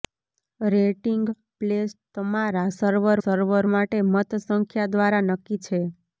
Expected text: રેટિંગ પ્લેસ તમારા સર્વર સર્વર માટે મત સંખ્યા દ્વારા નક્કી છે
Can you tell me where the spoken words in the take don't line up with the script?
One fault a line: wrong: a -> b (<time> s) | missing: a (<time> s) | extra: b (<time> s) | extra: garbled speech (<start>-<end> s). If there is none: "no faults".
no faults